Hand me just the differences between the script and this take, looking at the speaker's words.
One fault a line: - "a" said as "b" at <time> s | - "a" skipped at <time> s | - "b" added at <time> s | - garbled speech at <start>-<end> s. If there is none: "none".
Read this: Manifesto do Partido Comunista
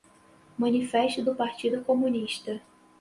none